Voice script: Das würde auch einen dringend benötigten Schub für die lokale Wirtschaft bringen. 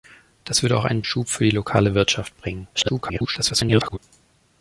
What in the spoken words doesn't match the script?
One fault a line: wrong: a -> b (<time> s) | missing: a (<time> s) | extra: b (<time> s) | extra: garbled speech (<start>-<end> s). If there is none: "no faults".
missing: dringend benötigten (1.0 s)
extra: garbled speech (2.7-4.0 s)